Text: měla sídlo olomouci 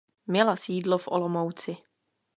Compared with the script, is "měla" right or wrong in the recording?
right